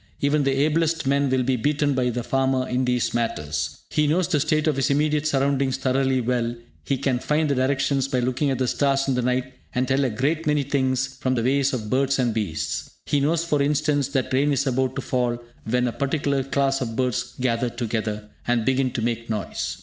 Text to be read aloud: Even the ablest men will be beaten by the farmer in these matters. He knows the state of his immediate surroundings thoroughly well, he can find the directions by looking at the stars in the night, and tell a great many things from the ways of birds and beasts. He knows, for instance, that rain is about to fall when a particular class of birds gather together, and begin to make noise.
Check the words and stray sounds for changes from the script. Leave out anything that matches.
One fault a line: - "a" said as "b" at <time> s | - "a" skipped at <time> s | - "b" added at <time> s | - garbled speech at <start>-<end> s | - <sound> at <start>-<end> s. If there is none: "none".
none